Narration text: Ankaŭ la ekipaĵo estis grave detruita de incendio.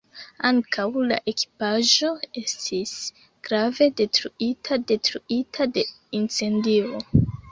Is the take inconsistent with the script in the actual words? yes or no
yes